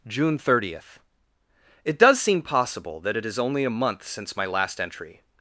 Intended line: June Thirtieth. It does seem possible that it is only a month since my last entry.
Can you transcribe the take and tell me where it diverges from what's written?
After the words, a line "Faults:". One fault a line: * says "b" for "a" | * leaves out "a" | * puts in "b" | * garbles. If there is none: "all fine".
June Thirtieth. It does seem possible that it is only a month since my last entry.
Faults:
all fine